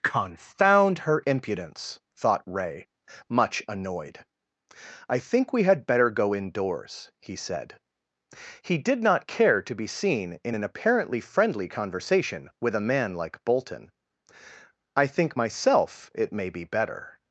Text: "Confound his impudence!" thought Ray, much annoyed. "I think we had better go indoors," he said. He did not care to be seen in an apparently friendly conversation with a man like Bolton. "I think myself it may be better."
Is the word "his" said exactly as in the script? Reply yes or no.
no